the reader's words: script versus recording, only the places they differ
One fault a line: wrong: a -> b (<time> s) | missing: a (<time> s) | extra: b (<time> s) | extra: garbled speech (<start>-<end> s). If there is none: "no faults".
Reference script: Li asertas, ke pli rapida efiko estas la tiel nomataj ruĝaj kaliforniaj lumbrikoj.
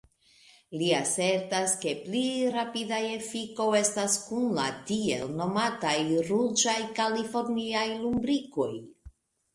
extra: kun (4.3 s)